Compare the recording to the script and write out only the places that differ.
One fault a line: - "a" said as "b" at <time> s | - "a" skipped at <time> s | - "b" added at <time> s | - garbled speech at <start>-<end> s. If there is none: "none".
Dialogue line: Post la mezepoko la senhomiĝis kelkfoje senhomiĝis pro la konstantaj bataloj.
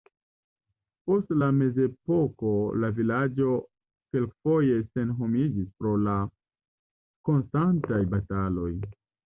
- "senhomiĝis" said as "vilaĝo" at 3.0 s